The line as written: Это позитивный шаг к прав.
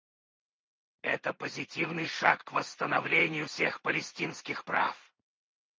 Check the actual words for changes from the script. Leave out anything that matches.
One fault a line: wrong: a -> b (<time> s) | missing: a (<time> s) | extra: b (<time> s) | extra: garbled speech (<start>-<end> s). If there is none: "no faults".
extra: восстановлению всех палестинских (2.5 s)